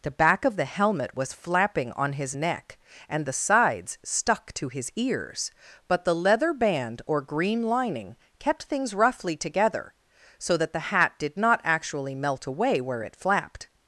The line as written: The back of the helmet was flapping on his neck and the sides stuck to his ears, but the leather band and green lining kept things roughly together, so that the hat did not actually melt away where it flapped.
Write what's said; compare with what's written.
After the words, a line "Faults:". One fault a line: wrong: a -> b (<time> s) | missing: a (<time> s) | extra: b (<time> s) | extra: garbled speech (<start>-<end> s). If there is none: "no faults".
The back of the helmet was flapping on his neck and the sides stuck to his ears, but the leather band or green lining kept things roughly together, so that the hat did not actually melt away where it flapped.
Faults:
wrong: and -> or (7.0 s)